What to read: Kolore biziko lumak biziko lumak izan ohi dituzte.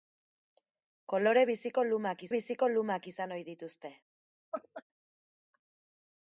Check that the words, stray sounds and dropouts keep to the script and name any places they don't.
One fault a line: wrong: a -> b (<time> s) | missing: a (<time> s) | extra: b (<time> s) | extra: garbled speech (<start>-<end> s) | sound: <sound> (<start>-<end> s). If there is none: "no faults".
sound: laugh (4.5-4.8 s)